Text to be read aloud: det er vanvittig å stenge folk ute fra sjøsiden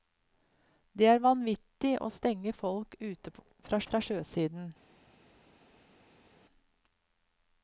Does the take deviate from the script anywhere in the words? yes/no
yes